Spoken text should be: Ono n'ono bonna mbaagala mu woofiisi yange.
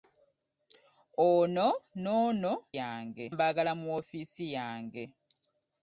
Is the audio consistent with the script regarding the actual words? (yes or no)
no